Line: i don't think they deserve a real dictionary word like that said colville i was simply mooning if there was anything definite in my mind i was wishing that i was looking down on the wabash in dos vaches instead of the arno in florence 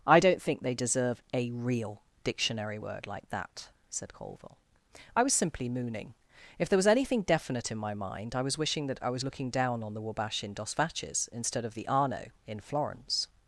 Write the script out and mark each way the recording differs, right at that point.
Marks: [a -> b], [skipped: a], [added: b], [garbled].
i don't think they deserve a real dictionary word like that said colville i was simply mooning if there was anything definite in my mind i was wishing that i was looking down on the wabash in dos vaches instead of the arno in florence